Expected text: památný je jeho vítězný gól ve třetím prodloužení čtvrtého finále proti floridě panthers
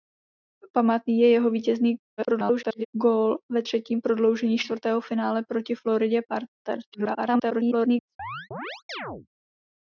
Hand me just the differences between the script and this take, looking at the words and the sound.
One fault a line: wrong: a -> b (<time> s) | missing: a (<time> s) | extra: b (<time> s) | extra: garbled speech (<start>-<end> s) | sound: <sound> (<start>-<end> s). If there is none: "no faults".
extra: garbled speech (2.2-2.9 s)
extra: garbled speech (6.9-8.1 s)
sound: chirp (8.2-9.3 s)